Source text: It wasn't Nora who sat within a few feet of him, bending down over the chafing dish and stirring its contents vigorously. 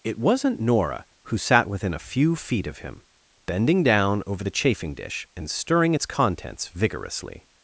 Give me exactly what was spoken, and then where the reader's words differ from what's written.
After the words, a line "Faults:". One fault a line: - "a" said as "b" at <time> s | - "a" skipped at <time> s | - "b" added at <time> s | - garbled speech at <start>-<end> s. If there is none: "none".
It wasn't Nora who sat within a few feet of him, bending down over the chafing dish and stirring its contents vigorously.
Faults:
none